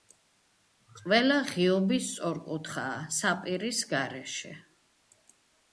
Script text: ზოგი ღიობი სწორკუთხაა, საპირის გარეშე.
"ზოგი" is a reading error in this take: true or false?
true